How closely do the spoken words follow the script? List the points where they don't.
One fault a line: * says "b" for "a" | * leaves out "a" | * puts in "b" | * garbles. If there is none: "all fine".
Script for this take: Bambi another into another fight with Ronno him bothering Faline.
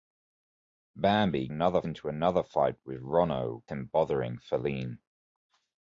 all fine